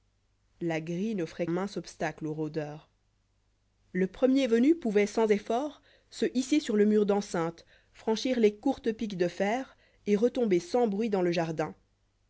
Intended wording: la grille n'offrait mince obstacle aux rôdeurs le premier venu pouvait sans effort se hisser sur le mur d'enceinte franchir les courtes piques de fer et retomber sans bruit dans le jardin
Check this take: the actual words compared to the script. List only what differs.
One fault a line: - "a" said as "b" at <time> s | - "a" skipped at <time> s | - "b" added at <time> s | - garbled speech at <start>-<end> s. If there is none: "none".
none